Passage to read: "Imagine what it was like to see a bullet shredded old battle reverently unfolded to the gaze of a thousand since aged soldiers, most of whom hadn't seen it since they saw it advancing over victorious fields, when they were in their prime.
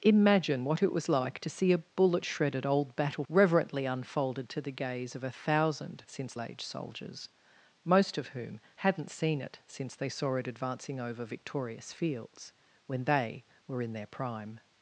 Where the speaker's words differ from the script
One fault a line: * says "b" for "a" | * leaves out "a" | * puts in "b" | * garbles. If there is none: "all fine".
all fine